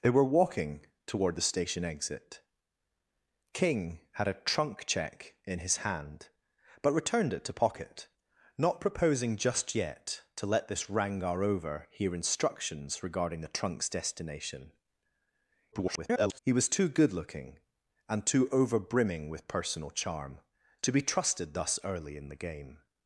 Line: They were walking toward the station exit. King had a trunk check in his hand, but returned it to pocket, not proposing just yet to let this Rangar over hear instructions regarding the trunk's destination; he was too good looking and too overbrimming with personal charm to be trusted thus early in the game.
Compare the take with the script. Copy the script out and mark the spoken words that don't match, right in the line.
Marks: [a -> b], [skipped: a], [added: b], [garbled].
They were walking toward the station exit. King had a trunk check in his hand, but returned it to pocket, not proposing just yet to let this Rangar over hear instructions regarding the trunk's destination; [garbled] he was too good looking and too overbrimming with personal charm to be trusted thus early in the game.